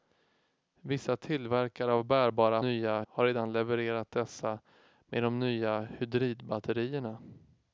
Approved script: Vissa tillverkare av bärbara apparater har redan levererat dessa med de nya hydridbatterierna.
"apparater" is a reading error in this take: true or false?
true